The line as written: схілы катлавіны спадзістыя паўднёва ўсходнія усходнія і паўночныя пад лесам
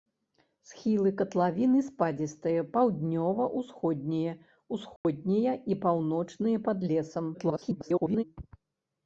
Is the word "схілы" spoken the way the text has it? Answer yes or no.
yes